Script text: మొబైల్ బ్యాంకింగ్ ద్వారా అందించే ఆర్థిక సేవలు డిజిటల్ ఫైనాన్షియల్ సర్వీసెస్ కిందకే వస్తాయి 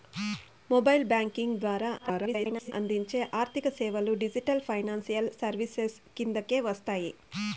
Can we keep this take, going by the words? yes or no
no